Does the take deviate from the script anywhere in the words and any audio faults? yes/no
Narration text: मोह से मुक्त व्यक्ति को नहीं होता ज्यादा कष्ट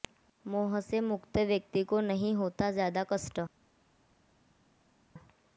no